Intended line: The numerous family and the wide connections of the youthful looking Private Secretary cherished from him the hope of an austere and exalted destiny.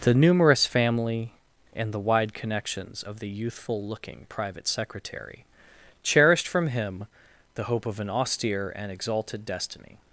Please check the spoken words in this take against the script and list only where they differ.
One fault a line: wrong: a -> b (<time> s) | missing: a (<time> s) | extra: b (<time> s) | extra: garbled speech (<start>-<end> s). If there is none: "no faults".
no faults